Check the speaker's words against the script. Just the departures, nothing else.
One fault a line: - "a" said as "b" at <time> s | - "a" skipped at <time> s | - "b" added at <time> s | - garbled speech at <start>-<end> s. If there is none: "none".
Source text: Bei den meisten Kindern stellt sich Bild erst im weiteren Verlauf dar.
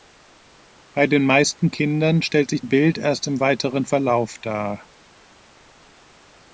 none